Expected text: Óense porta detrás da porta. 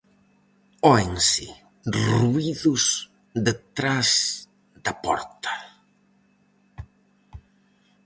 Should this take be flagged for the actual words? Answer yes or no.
yes